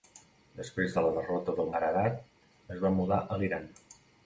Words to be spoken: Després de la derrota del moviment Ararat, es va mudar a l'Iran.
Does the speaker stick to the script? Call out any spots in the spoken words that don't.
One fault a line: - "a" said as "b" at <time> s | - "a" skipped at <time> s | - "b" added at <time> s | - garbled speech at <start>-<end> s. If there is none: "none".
- "moviment" skipped at 1.7 s